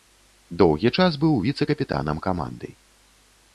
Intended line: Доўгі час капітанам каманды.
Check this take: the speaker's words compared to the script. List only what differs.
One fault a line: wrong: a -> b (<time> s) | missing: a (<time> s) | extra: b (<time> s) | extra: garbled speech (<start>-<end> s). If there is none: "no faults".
extra: быў віцэ (1.2 s)